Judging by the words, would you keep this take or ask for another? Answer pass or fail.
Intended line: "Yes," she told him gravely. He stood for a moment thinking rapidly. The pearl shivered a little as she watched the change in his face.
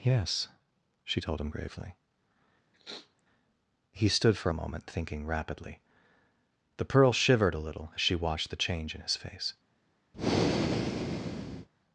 pass